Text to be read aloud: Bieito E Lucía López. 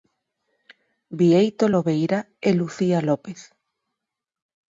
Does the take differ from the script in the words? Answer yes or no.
yes